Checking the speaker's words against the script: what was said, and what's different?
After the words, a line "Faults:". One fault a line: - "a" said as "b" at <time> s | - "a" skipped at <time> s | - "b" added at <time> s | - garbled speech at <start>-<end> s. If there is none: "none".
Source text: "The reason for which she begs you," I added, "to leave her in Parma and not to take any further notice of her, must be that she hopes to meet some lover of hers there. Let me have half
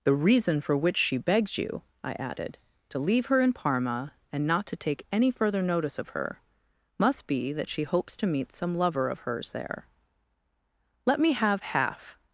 "The reason for which she begs you," I added, "to leave her in Parma and not to take any further notice of her, must be that she hopes to meet some lover of hers there. Let me have half
Faults:
none